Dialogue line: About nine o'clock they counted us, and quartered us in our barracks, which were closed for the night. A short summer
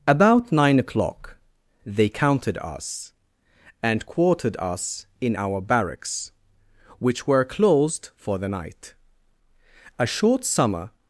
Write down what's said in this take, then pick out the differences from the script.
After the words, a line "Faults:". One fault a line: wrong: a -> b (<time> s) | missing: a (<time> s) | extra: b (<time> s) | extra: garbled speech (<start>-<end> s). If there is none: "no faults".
About nine o'clock they counted us, and quartered us in our barracks, which were closed for the night. A short summer
Faults:
no faults